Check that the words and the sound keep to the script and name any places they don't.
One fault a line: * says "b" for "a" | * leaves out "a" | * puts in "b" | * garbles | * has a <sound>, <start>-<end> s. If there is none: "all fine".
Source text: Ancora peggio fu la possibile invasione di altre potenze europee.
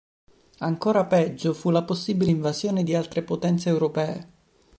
all fine